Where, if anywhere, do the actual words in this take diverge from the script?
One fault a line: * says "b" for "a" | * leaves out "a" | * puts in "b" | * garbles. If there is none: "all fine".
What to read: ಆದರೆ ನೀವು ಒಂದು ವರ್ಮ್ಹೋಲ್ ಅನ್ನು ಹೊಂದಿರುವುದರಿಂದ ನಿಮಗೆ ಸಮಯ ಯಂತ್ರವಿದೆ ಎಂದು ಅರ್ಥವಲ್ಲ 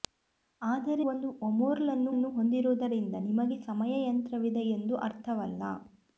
* leaves out "ನೀವು"
* puts in "ಅನ್ನು"